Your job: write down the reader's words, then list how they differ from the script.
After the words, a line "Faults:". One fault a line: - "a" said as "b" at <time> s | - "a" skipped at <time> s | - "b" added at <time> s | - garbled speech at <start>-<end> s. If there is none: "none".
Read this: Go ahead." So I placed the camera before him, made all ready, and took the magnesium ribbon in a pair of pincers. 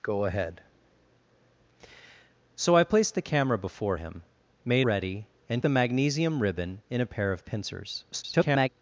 Go ahead." So I placed the camera before him, made ready, and the magnesium ribbon in a pair of pincers. [garbled]
Faults:
- "all" skipped at 4.9 s
- "took" skipped at 5.6 s
- garbled speech at 8.1-8.7 s